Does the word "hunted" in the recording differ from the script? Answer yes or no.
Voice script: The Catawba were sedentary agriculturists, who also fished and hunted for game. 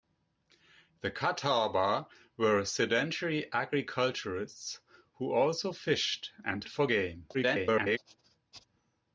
yes